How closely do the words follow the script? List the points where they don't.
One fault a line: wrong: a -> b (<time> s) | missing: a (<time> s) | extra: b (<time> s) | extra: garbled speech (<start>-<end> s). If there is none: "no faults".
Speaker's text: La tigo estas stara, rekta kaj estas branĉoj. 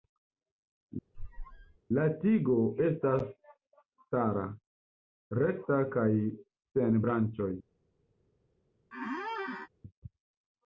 wrong: estas -> sen (6.8 s)